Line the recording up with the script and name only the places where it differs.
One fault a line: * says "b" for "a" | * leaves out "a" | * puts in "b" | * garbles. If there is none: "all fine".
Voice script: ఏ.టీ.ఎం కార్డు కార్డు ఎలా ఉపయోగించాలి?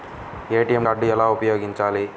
* leaves out "కార్డు"